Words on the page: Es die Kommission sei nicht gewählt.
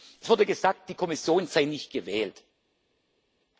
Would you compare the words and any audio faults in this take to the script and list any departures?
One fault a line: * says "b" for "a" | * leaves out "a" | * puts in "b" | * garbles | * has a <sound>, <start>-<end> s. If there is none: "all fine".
* puts in "wurde gesagt"